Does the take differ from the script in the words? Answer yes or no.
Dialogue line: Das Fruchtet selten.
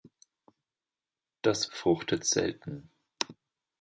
no